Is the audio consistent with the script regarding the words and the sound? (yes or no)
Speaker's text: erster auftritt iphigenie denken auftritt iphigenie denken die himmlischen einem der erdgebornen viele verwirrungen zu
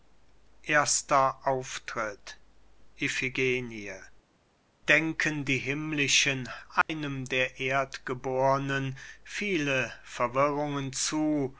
no